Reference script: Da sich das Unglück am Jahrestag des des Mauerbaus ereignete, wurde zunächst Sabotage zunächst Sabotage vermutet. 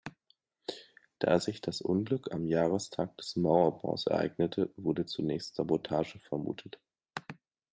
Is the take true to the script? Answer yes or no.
no